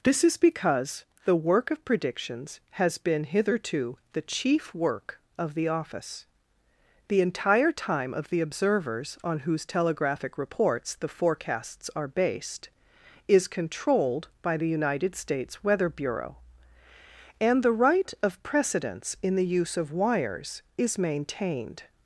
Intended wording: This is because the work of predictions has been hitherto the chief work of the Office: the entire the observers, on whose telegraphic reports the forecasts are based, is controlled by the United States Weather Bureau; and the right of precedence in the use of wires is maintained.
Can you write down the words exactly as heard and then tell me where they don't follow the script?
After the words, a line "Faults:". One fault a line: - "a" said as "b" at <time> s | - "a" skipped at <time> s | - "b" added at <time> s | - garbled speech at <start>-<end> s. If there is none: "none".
This is because the work of predictions has been hitherto the chief work of the Office: the entire time of the observers, on whose telegraphic reports the forecasts are based, is controlled by the United States Weather Bureau; and the right of precedence in the use of wires is maintained.
Faults:
- "time of" added at 7.7 s